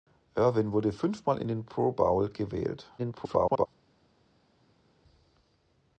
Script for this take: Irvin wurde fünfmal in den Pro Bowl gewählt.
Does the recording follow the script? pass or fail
fail